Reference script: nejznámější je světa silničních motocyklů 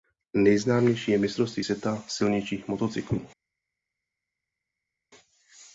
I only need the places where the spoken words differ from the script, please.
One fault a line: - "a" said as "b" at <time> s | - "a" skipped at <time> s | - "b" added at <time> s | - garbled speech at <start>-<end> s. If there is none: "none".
- "mistrovství" added at 1.2 s